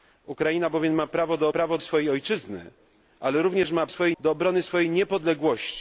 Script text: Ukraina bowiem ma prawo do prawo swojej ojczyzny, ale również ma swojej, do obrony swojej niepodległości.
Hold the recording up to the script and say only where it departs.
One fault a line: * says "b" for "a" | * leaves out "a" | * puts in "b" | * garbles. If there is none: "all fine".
all fine